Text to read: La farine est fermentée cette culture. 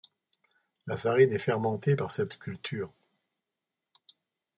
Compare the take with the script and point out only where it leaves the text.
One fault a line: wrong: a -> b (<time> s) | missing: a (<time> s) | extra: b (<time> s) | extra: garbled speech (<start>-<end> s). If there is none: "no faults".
extra: par (1.9 s)